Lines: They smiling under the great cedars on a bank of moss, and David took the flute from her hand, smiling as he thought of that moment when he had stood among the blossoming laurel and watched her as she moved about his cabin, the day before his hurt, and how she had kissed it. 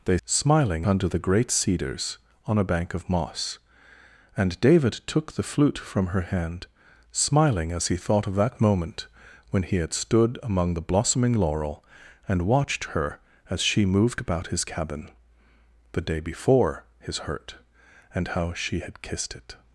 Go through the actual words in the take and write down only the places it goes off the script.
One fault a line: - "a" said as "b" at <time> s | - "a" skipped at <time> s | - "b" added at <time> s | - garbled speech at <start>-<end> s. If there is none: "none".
none